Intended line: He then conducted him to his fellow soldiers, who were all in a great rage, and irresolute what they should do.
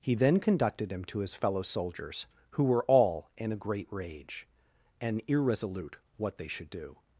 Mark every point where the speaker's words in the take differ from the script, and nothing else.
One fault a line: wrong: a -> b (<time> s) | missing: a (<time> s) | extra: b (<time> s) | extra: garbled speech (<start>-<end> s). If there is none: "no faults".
no faults